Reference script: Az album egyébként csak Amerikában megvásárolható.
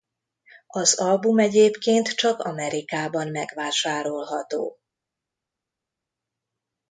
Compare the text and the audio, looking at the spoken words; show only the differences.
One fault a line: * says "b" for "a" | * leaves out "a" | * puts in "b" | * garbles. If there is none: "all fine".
all fine